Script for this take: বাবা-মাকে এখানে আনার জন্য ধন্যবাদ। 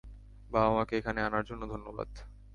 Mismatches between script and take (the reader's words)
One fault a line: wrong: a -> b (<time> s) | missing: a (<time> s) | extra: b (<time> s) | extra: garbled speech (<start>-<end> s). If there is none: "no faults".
no faults